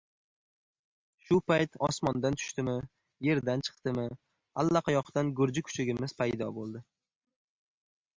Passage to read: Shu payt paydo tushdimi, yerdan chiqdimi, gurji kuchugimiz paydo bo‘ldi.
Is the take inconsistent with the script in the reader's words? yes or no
yes